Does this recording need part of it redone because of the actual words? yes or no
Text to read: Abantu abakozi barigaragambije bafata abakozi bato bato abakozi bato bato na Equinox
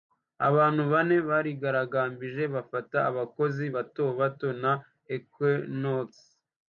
yes